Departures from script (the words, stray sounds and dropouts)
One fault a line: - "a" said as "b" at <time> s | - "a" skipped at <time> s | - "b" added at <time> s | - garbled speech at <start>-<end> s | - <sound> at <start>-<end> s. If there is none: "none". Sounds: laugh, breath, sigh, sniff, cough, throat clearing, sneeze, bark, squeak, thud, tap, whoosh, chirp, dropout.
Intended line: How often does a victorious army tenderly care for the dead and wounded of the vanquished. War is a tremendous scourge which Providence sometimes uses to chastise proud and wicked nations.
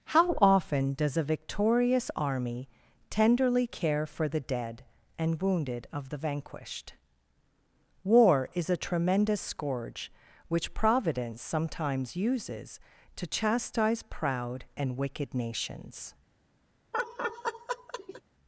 - laugh at 16.9-18.2 s